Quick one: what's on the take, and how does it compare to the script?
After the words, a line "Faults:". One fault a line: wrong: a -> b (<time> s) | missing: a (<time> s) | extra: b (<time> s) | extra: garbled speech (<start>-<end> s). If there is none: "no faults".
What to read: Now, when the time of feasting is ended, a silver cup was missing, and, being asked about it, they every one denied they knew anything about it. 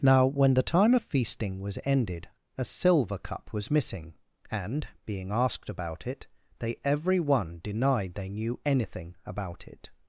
Now, when the time of feasting was ended, a silver cup was missing, and, being asked about it, they every one denied they knew anything about it.
Faults:
wrong: is -> was (1.6 s)